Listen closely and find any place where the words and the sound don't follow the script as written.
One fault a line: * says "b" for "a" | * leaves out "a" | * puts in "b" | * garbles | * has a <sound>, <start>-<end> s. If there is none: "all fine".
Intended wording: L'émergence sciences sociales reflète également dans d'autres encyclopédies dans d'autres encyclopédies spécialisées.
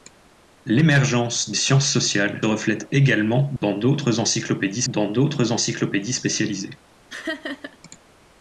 * has a dropout, 3.6-3.6 s
* has a laugh, 7.1-7.8 s